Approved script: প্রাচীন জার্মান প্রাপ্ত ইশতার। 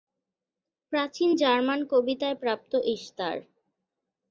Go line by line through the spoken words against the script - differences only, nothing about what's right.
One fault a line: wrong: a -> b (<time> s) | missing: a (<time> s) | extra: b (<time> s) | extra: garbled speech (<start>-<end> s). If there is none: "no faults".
extra: কবিতায় (1.9 s)